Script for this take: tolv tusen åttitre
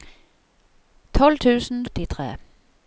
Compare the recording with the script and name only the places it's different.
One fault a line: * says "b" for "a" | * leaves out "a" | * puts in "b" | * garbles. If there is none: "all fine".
all fine